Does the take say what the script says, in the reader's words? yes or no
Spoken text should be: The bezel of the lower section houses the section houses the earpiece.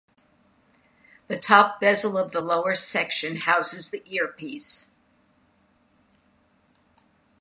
no